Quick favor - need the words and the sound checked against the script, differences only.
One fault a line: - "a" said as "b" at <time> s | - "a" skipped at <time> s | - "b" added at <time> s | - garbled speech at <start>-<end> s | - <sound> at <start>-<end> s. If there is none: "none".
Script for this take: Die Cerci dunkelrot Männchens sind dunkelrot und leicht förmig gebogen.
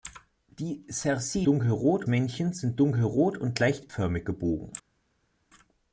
none